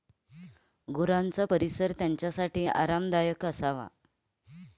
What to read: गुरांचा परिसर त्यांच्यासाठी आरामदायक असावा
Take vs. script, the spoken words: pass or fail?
pass